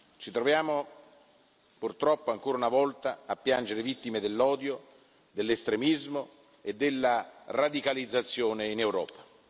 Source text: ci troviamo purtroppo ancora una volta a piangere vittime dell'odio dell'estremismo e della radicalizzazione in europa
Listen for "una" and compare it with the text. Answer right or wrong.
right